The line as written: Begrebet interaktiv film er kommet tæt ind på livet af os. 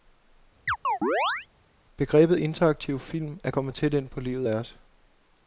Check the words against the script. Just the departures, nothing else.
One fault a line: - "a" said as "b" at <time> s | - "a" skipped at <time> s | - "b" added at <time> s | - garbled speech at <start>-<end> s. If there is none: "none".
none